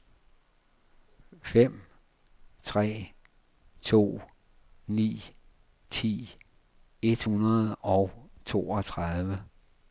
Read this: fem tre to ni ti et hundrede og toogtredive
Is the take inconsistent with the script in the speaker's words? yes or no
no